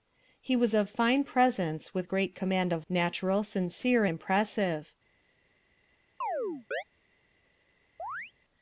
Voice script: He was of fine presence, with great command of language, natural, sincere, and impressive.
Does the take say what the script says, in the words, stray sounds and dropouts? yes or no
no